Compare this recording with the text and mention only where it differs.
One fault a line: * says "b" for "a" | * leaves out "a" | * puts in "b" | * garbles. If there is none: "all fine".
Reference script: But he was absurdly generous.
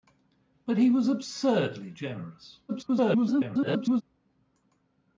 * garbles